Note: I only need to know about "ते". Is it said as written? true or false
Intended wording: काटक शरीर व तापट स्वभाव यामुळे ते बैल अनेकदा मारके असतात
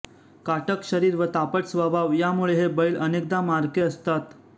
false